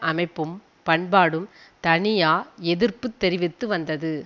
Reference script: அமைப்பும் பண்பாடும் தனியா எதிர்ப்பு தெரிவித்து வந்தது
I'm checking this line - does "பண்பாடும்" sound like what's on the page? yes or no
yes